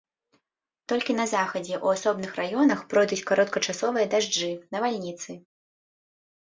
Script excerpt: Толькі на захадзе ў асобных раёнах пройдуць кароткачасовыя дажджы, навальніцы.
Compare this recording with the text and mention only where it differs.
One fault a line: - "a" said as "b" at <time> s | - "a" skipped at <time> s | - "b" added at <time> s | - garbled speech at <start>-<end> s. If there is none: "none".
none